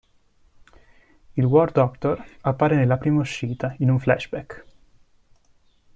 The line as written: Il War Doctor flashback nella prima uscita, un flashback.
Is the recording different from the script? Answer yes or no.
yes